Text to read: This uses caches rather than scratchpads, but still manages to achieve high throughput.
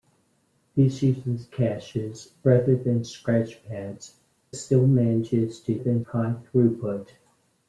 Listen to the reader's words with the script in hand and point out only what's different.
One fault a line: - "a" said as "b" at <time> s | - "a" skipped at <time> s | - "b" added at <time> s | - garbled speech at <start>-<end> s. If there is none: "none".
- "but" skipped at 4.1 s
- "achieve" said as "than" at 5.7 s